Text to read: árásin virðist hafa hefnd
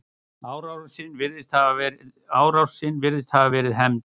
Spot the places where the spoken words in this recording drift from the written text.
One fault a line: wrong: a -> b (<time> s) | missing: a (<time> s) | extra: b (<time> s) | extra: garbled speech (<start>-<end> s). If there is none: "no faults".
extra: verið (3.5 s)